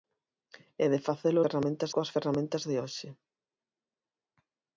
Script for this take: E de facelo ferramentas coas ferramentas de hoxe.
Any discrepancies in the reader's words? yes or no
no